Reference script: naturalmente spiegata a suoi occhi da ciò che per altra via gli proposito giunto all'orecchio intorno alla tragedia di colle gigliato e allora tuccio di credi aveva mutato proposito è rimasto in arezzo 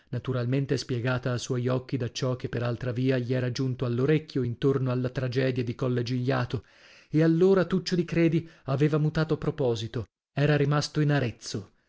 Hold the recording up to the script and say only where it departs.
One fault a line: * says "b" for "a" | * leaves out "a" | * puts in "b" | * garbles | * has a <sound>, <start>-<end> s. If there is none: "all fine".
* says "era" for "proposito"
* says "era" for "è"